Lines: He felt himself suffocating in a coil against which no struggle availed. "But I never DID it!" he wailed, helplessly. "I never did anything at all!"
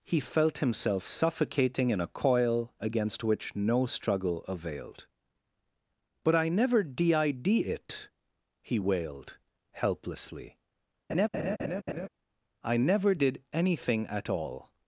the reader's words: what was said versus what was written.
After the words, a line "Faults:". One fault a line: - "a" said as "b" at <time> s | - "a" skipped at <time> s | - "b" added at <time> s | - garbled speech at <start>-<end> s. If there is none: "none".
He felt himself suffocating in a coil against which no struggle availed. "But I never DID it!" he wailed, helplessly. "I never did anything at all!"
Faults:
none